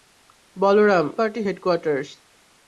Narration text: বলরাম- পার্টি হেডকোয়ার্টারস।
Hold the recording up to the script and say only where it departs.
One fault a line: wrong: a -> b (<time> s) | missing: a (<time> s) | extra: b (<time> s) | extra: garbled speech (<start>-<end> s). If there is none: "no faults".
no faults